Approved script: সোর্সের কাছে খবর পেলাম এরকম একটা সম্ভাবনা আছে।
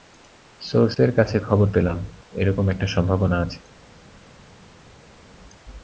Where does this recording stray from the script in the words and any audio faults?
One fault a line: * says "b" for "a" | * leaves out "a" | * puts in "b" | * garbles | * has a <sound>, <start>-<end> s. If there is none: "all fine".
all fine